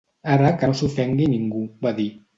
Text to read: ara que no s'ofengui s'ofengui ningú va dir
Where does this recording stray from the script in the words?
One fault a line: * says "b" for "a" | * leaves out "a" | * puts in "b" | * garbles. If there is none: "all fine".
* leaves out "s'ofengui"